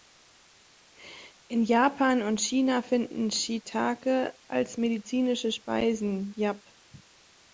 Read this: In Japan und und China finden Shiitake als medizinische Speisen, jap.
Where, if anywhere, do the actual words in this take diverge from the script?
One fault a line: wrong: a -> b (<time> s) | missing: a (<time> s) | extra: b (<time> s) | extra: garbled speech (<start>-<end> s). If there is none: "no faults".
missing: und (2.4 s)